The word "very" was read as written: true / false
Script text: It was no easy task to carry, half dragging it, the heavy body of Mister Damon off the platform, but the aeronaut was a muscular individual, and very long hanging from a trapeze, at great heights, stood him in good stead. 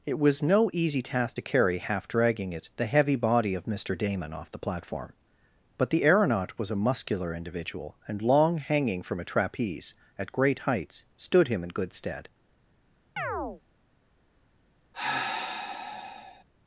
false